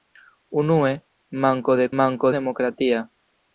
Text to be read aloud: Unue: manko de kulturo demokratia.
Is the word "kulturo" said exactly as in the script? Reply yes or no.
no